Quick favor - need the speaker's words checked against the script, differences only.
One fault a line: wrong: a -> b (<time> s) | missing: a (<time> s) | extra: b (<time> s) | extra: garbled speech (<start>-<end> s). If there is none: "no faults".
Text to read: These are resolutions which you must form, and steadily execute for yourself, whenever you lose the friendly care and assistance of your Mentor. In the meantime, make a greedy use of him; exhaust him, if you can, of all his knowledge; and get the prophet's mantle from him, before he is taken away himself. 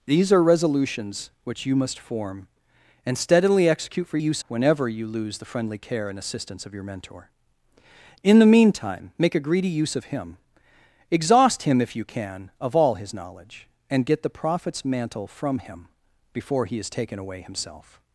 wrong: yourself -> use (4.2 s)